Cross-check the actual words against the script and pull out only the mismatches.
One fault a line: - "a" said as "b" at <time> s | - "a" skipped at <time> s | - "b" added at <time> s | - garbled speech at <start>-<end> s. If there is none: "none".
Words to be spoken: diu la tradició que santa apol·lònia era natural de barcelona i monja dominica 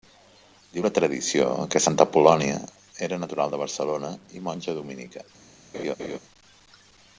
none